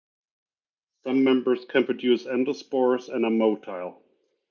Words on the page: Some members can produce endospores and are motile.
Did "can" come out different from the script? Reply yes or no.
no